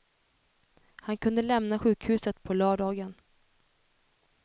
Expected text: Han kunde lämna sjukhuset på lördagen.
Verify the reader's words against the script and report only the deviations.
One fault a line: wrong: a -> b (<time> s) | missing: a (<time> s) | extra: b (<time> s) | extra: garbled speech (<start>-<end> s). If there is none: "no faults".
no faults